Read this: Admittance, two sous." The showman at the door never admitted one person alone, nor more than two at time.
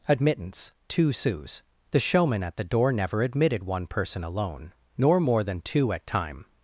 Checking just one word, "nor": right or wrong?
right